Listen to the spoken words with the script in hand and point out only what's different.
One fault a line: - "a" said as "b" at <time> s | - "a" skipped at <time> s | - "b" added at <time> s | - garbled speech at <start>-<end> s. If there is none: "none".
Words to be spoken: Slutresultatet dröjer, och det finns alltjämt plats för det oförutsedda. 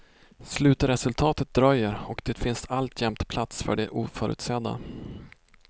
none